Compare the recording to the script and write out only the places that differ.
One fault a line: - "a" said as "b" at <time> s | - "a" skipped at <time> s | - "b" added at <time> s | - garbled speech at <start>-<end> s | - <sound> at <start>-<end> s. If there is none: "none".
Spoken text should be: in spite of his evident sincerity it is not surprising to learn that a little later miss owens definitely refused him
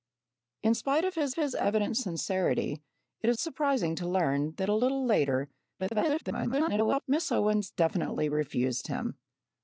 - "his" added at 1.3 s
- "not" skipped at 3.4 s
- garbled speech at 5.8-7.0 s